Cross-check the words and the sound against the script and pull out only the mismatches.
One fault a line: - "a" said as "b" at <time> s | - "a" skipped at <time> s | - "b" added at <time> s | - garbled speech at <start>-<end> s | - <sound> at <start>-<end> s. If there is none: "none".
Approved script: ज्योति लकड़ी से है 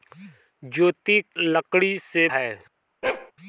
- bark at 3.0-3.3 s